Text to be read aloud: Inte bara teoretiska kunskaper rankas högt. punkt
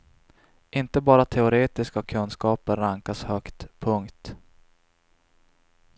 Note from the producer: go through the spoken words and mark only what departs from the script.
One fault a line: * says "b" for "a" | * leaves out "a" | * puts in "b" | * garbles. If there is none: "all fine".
all fine